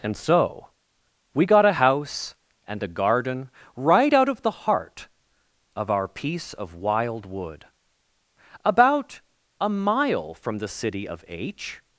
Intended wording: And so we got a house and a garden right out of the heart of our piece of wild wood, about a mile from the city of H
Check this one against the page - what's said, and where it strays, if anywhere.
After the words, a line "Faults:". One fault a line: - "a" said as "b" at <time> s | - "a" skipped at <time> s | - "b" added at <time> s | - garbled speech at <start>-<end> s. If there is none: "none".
And so we got a house and a garden right out of the heart of our piece of wild wood, about a mile from the city of H
Faults:
none